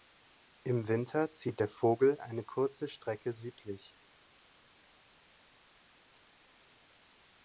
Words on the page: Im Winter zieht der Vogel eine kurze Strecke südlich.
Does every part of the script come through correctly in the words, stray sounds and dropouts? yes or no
yes